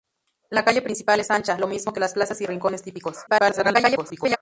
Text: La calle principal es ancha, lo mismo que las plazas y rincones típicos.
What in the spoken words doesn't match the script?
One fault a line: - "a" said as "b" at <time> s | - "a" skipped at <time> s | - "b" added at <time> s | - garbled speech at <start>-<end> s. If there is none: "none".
- garbled speech at 3.3-4.4 s